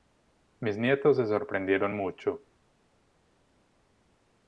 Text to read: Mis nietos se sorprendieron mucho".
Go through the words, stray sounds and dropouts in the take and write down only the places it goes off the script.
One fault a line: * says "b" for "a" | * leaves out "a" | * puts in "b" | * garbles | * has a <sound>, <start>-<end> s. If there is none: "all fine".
all fine